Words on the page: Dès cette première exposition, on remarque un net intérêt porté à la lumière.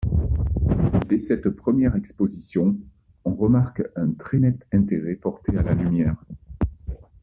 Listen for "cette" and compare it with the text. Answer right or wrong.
right